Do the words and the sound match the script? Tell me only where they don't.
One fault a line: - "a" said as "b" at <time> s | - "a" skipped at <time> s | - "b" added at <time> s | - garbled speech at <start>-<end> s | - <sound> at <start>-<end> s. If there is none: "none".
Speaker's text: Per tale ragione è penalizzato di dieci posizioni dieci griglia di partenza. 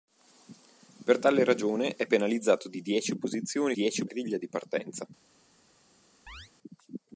- chirp at 6.3-6.5 s